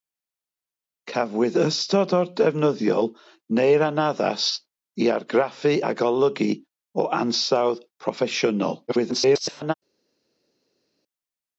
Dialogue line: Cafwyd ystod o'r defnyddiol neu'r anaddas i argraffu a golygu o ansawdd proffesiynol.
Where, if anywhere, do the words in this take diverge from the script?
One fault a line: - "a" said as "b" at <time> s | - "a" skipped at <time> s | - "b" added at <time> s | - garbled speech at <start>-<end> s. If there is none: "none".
- garbled speech at 8.9-9.7 s